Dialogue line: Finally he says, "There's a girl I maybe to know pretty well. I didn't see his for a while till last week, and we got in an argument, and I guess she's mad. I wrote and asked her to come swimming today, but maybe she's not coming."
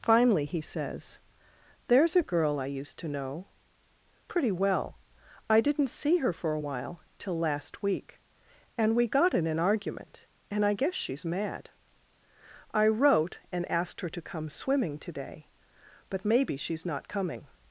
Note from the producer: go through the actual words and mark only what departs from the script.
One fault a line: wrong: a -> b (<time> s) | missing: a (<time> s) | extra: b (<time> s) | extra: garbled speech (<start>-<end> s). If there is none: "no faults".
wrong: maybe -> used (2.6 s)
wrong: his -> her (6.2 s)